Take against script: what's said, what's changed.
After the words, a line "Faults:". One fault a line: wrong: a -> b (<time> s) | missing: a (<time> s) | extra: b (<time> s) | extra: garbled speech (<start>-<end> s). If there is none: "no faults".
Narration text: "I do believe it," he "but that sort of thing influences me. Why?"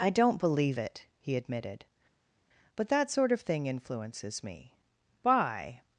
"I don't believe it," he admitted, "but that sort of thing influences me. Why?"
Faults:
wrong: do -> don't (0.1 s)
extra: admitted (1.3 s)